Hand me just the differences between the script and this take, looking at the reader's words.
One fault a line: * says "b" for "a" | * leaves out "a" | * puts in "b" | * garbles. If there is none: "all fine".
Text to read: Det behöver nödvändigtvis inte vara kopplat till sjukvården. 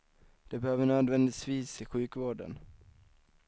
* leaves out "inte vara kopplat"